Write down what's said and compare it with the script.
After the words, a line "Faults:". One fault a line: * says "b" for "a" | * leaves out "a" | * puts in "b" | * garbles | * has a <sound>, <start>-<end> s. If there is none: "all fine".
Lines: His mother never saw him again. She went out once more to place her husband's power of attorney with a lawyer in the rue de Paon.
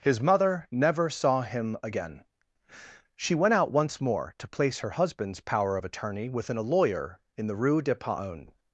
His mother never saw him again. She went out once more to place her husband's power of attorney within a lawyer in the rue de Paon.
Faults:
* says "within" for "with"